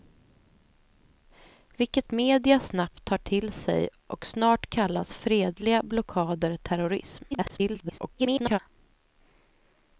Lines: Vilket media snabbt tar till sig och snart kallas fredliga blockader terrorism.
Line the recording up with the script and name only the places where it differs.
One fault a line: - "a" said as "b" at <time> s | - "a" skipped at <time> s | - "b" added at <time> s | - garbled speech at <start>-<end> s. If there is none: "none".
- garbled speech at 7.3-8.6 s